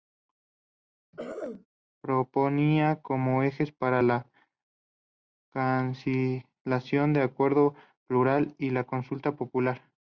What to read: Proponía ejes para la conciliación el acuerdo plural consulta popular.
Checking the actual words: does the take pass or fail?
fail